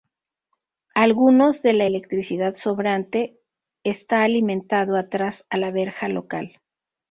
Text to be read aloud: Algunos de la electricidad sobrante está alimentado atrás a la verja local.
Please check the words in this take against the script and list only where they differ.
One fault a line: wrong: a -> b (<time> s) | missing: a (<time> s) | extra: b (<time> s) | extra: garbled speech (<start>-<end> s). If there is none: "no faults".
no faults